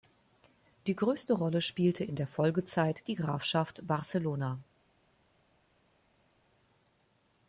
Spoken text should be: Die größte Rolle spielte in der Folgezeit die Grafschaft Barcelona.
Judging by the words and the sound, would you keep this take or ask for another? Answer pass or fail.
pass